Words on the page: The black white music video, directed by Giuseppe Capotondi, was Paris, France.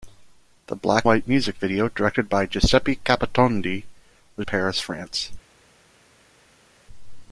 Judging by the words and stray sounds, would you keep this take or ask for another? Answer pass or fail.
pass